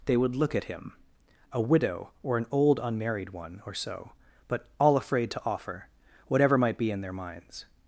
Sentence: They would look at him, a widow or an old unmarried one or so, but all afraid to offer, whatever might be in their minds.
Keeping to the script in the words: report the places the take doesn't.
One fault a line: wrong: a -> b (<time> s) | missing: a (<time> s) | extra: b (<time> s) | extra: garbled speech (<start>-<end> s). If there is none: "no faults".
no faults